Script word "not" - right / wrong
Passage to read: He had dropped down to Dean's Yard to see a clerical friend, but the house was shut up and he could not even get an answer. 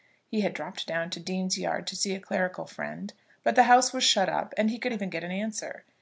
wrong